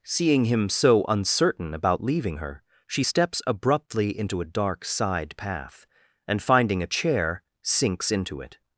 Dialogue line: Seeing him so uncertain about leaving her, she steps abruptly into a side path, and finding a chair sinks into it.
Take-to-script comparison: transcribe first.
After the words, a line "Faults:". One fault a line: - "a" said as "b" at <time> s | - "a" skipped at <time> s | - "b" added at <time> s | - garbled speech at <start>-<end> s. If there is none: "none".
Seeing him so uncertain about leaving her, she steps abruptly into a dark side path, and finding a chair sinks into it.
Faults:
- "dark" added at 4.4 s